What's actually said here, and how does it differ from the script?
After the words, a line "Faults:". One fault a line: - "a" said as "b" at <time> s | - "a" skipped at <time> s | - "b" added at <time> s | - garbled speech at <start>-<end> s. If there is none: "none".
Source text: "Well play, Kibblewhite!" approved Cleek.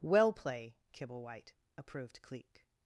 "Well play, Kibblewhite!" approved Cleek.
Faults:
none